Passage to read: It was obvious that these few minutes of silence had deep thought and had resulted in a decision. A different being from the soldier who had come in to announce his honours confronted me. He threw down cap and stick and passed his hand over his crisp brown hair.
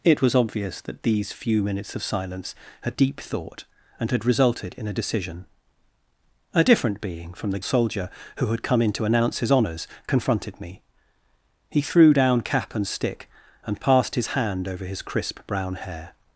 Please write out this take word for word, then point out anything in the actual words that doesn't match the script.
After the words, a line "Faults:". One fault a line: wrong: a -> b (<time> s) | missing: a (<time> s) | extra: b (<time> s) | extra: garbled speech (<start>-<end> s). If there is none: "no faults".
It was obvious that these few minutes of silence had deep thought and had resulted in a decision. A different being from the soldier who had come in to announce his honours confronted me. He threw down cap and stick and passed his hand over his crisp brown hair.
Faults:
no faults